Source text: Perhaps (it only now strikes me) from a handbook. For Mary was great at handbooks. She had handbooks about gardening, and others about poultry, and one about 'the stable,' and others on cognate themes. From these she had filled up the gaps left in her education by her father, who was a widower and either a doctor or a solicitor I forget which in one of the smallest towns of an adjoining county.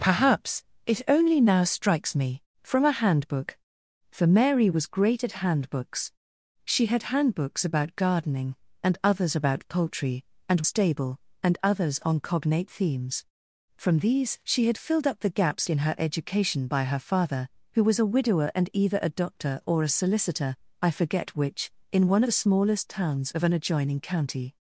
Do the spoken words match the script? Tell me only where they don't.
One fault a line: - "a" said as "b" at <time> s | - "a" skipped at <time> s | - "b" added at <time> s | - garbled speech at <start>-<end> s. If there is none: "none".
- "one about the" skipped at 10.6 s
- "left" skipped at 15.7 s
- "of" skipped at 22.2 s